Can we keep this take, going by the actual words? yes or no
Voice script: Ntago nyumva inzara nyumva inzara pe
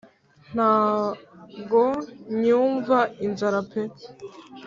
no